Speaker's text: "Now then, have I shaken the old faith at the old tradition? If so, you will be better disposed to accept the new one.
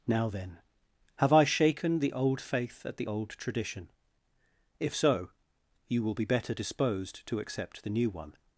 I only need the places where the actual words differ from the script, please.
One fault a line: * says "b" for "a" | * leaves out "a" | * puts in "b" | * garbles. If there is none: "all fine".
all fine